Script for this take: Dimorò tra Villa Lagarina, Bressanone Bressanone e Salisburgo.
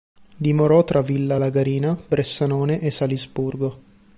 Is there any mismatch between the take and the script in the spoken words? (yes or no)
yes